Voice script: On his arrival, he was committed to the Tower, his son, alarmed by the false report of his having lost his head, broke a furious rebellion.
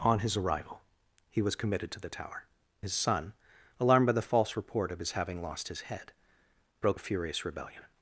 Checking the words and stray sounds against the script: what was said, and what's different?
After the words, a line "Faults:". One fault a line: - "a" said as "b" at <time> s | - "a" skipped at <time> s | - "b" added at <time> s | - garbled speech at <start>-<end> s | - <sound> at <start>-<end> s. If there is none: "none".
On his arrival, he was committed to the Tower, his son, alarmed by the false report of his having lost his head, broke a furious rebellion.
Faults:
none